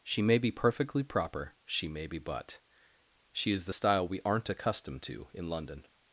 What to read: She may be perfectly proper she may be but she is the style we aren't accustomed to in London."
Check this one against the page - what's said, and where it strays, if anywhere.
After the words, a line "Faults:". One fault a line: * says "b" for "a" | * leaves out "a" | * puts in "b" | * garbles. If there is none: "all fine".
She may be perfectly proper she may be but she is the style we aren't accustomed to in London."
Faults:
all fine